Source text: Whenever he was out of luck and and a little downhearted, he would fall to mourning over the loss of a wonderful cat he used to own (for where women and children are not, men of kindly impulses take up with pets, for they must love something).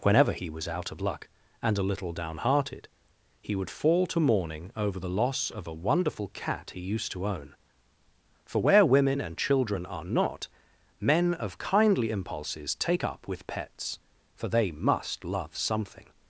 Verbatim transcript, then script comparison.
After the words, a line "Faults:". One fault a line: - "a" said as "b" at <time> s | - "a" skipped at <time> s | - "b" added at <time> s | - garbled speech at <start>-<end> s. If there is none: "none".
Whenever he was out of luck and a little downhearted, he would fall to mourning over the loss of a wonderful cat he used to own (for where women and children are not, men of kindly impulses take up with pets, for they must love something).
Faults:
- "and" skipped at 1.8 s